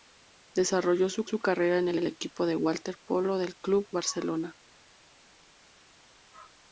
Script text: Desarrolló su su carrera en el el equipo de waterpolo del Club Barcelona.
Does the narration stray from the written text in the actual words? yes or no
no